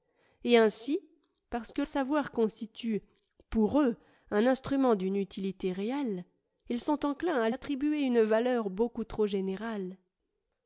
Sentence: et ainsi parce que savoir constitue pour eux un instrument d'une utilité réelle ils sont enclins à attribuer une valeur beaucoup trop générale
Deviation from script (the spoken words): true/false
false